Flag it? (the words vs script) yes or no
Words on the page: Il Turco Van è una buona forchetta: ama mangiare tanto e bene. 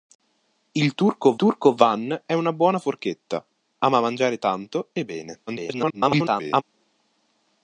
yes